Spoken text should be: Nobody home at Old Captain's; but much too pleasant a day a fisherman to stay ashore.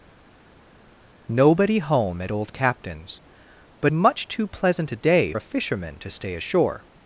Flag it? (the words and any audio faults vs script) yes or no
no